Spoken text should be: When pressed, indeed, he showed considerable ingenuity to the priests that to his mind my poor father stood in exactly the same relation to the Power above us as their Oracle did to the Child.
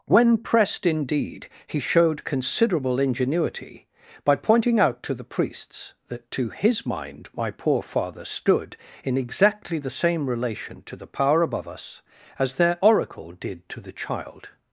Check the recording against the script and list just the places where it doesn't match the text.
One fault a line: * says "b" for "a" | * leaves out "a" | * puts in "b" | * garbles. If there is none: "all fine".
* puts in "by pointing out"